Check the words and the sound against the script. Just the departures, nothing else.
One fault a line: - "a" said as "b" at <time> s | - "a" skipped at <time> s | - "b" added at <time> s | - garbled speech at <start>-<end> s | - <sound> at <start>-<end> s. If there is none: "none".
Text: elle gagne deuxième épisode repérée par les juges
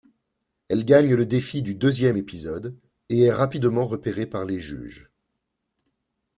- "le défi du" added at 1.1 s
- "et est rapidement" added at 3.1 s